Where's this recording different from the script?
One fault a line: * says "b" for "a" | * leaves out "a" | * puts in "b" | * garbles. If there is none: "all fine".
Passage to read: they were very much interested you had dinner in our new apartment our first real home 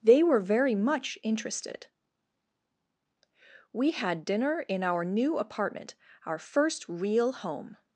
* says "we" for "you"